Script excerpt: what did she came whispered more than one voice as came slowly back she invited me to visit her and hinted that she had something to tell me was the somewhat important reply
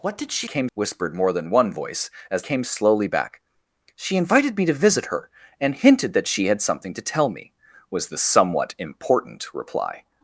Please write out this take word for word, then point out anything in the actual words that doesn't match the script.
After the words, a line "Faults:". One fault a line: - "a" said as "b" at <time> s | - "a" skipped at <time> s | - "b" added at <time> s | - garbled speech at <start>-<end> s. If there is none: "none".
what did she came whispered more than one voice as came slowly back she invited me to visit her and hinted that she had something to tell me was the somewhat important reply
Faults:
none